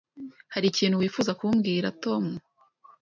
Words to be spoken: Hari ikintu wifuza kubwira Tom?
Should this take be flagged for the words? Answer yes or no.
no